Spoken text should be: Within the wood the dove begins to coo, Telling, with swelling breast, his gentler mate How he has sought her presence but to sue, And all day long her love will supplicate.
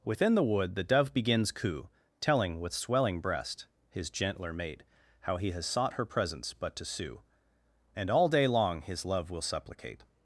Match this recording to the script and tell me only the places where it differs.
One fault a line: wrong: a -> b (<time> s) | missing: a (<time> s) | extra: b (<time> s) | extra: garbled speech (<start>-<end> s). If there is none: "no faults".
missing: to (1.5 s)
wrong: her -> his (8.8 s)